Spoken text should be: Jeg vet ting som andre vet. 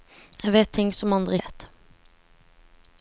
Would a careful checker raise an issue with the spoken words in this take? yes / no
no